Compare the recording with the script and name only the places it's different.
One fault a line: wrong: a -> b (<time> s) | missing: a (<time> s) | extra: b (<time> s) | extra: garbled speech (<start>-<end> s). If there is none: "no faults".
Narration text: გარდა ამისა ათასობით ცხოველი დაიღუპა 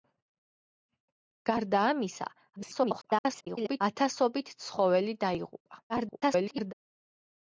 extra: garbled speech (2.6-3.8 s)
extra: garbled speech (5.9-6.7 s)